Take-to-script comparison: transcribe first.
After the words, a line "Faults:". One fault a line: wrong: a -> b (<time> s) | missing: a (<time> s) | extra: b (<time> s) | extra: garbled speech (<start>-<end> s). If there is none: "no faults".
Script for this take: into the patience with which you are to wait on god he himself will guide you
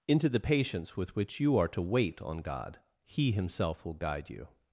into the patience with which you are to wait on god he himself will guide you
Faults:
no faults